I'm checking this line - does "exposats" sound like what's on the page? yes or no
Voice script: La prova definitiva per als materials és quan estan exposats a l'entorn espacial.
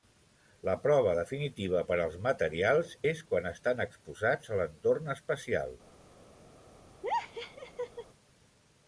yes